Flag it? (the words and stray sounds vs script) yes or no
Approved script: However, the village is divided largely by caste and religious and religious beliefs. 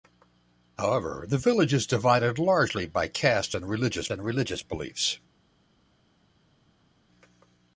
no